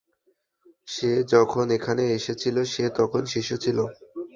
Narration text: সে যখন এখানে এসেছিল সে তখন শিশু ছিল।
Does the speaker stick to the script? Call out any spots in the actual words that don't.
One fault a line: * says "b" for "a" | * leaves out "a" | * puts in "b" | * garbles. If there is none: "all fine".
all fine